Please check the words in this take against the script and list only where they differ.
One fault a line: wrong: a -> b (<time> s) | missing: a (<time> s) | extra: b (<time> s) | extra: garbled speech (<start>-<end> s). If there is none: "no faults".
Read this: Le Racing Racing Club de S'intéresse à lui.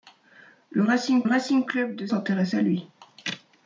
no faults